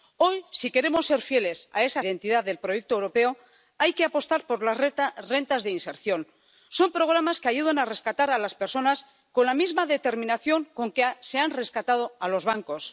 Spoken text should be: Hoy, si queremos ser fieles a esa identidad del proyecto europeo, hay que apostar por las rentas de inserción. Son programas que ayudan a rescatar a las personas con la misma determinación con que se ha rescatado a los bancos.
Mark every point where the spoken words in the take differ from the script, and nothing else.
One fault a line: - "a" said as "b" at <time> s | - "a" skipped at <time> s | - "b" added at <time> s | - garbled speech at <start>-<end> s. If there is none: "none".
none